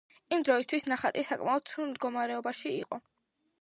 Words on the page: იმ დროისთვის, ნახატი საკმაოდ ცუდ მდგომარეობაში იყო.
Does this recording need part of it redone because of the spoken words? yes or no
no